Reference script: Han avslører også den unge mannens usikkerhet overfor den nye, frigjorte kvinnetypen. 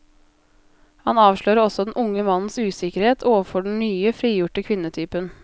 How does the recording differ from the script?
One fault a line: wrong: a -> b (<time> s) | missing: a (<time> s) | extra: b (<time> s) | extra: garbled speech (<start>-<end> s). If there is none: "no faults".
no faults